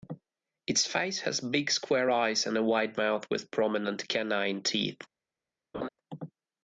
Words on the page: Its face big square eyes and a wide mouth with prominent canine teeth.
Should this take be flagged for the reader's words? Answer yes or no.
yes